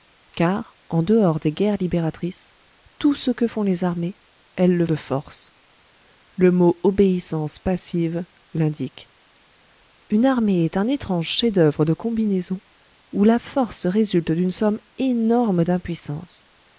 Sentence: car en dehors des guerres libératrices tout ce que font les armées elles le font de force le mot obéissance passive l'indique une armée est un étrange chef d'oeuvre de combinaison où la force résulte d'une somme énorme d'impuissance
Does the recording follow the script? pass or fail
fail